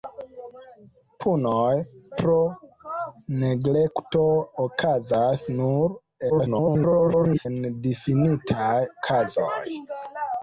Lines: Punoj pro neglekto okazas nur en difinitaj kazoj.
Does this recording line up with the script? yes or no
no